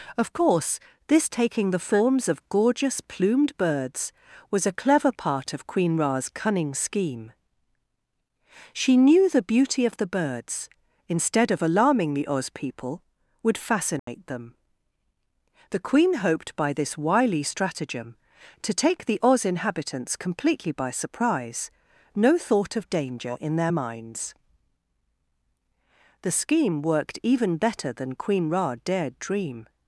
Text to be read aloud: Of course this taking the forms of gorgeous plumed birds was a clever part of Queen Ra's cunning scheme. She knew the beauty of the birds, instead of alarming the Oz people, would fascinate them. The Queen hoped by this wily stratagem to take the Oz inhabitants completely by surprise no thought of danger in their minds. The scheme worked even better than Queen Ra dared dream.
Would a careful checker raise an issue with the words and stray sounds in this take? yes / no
yes